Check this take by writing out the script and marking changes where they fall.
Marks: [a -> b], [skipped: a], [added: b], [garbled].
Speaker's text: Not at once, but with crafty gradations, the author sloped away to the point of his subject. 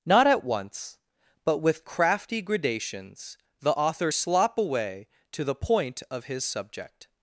Not at once, but with crafty gradations, the author [sloped -> slop] away to the point of his subject.